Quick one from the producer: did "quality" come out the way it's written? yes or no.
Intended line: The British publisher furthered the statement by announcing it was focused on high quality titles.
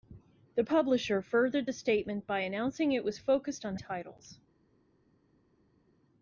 no